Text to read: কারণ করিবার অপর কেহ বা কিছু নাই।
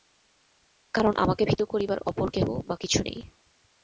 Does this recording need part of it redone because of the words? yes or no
yes